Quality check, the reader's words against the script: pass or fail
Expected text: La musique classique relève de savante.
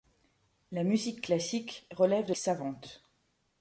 pass